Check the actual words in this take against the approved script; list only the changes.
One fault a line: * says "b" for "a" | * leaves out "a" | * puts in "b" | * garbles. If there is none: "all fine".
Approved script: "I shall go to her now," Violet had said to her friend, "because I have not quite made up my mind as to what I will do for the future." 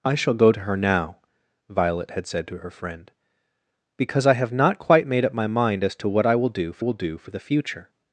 * puts in "will do for"